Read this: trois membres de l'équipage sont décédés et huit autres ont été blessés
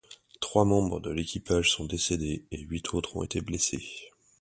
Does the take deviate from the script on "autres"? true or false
false